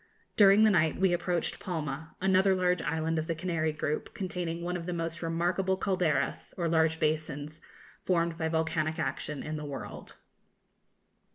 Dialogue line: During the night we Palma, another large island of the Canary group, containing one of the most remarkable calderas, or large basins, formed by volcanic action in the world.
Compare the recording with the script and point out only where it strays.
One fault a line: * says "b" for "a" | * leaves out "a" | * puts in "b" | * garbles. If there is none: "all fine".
* puts in "approached"